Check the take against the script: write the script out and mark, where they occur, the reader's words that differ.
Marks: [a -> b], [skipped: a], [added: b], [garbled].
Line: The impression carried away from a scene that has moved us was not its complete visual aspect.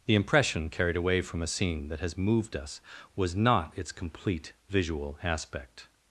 The impression carried away from a scene that has moved us was not its complete visual aspect.